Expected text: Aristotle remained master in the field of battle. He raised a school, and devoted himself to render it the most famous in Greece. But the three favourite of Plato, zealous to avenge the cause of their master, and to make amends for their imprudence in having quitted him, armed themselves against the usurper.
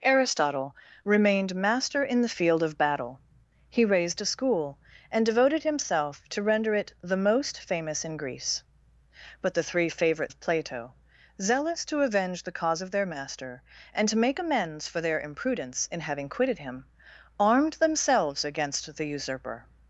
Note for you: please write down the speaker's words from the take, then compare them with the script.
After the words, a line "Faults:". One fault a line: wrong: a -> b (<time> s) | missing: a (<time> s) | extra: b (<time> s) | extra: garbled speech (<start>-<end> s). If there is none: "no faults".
Aristotle remained master in the field of battle. He raised a school, and devoted himself to render it the most famous in Greece. But the three favourite of Plato, zealous to avenge the cause of their master, and to make amends for their imprudence in having quitted him, armed themselves against the usurper.
Faults:
no faults